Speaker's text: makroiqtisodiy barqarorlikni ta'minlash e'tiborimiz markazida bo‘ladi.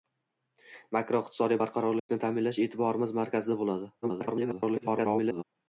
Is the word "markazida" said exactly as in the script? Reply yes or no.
yes